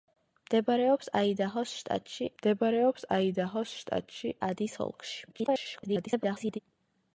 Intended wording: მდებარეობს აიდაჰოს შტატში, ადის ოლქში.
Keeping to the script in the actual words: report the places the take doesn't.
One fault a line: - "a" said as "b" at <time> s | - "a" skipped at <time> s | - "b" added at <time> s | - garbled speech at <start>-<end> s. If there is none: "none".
- "მდებარეობს აიდაჰოს შტატში" added at 2.4 s
- garbled speech at 5.3-6.6 s